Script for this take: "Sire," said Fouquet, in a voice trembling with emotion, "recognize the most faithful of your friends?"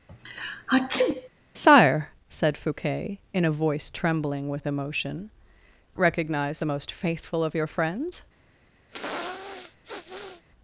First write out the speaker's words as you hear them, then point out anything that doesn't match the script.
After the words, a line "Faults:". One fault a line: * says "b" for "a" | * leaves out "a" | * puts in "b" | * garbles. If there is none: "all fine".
"Sire," said Fouquet, in a voice trembling with emotion, "recognize the most faithful of your friends?"
Faults:
all fine